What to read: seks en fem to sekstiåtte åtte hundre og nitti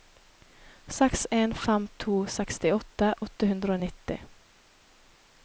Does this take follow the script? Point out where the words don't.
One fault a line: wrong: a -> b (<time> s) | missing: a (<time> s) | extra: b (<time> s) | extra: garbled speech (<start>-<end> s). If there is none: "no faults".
no faults